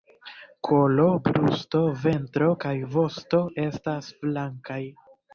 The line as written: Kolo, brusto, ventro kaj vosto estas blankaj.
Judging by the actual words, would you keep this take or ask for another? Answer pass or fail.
pass